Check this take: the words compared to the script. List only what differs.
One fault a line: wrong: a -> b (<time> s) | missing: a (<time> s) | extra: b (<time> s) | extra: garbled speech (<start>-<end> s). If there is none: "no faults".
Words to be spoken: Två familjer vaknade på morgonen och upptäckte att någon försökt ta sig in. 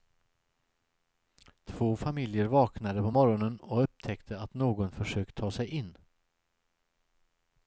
no faults